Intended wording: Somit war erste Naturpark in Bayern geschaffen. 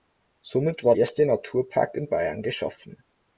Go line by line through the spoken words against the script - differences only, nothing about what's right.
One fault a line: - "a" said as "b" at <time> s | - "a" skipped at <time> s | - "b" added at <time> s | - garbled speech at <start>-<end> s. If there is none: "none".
none